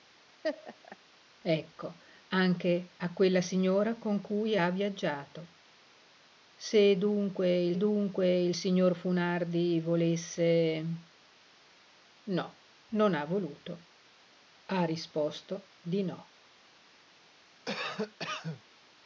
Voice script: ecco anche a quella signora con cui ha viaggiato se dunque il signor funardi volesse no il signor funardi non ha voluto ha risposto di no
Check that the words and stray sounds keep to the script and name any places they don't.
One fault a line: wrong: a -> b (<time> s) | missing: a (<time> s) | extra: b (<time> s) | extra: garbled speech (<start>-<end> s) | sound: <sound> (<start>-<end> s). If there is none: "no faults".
sound: laugh (0.4-1.0 s)
extra: dunque il (7.8 s)
missing: il signor funardi (12.6 s)
sound: cough (17.7-18.6 s)